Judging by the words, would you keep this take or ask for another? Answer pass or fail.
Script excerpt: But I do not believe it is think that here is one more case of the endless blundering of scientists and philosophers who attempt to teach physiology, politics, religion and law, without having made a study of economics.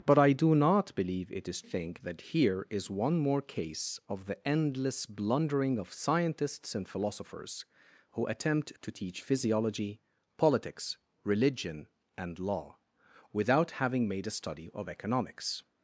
pass